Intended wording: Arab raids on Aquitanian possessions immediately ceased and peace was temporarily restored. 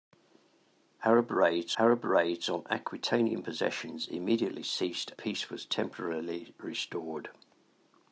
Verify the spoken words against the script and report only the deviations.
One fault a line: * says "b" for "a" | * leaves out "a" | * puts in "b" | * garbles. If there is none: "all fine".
* puts in "arab raids"
* leaves out "and"